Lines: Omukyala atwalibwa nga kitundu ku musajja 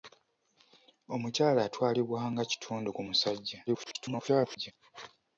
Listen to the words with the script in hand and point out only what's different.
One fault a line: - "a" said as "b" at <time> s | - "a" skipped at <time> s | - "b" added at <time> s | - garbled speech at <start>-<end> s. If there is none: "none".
- garbled speech at 3.7-4.7 s